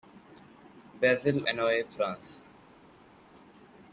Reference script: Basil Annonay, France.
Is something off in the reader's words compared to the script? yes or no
no